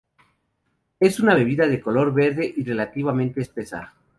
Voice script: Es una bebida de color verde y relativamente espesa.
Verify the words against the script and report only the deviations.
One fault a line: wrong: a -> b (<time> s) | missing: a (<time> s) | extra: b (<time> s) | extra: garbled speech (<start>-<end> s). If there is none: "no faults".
no faults